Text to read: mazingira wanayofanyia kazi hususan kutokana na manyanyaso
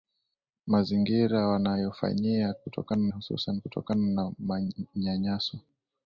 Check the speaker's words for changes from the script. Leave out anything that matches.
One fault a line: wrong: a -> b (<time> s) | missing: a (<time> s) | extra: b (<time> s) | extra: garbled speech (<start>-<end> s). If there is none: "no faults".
wrong: kazi -> kutokana (2.6 s)